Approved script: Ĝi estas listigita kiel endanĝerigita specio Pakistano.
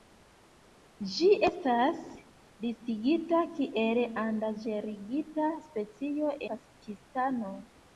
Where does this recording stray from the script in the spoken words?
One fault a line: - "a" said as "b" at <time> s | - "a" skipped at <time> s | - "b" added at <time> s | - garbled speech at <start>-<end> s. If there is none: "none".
none